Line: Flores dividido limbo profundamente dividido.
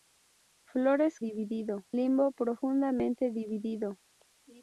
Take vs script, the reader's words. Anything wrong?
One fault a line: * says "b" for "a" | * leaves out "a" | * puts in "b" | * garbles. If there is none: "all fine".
all fine